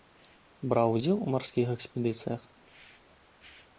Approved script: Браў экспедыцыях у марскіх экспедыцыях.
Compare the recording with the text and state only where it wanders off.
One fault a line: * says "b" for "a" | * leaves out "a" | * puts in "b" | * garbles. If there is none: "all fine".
* says "удзел" for "экспедыцыях"